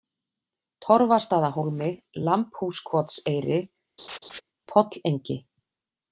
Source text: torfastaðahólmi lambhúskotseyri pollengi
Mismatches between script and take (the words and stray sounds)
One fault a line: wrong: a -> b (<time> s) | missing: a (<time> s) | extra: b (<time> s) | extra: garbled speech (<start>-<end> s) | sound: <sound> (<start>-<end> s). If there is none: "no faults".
sound: laugh (4.0-4.4 s)